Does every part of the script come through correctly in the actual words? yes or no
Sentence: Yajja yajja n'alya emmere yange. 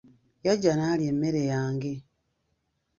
no